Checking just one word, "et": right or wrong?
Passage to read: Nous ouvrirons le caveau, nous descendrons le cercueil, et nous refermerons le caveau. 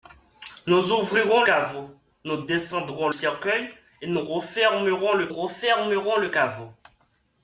right